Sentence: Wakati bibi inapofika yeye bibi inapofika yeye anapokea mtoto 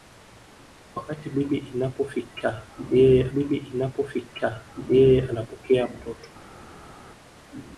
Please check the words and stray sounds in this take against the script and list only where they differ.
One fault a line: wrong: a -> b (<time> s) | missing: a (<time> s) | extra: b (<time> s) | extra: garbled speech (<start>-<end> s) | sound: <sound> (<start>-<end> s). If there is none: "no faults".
no faults